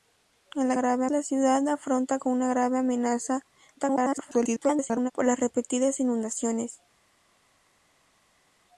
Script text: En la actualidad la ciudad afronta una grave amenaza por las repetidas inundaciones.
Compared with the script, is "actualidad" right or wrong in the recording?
wrong